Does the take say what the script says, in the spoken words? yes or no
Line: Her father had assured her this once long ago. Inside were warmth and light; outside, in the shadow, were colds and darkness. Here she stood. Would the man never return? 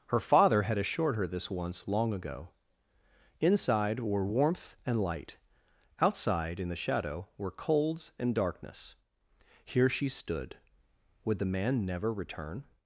yes